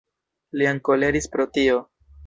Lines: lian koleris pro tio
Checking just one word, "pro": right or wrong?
right